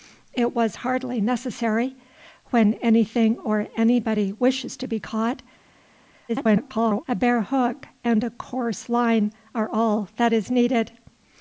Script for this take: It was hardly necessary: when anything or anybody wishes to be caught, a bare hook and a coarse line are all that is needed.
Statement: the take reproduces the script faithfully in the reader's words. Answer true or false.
false